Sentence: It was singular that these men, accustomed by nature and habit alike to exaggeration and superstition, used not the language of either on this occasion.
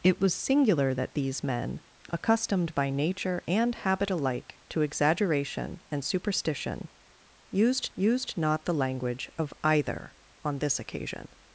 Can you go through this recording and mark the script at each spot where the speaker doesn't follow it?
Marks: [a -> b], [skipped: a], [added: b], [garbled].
It was singular that these men, accustomed by nature and habit alike to exaggeration and superstition, used [added: used] not the language of either on this occasion.